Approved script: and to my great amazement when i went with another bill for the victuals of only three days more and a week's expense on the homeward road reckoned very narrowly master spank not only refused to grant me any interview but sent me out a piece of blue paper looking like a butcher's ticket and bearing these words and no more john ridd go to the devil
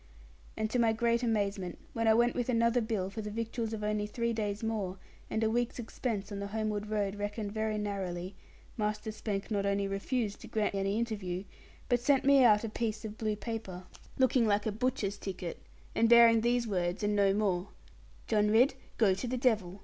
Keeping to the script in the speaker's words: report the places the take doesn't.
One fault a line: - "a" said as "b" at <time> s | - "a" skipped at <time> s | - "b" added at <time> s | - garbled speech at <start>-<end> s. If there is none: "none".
- "me" skipped at 10.8 s